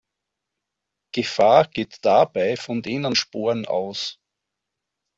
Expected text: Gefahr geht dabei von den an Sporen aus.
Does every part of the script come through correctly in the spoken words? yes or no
yes